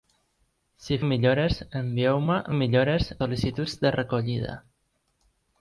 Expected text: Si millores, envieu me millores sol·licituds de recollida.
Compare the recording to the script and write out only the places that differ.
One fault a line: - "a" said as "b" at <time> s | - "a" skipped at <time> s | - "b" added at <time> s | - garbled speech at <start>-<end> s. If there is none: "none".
none